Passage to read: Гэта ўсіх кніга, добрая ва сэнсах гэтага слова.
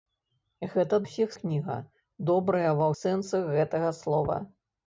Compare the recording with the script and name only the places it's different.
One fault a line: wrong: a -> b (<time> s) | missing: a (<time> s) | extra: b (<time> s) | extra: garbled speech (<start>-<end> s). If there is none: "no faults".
no faults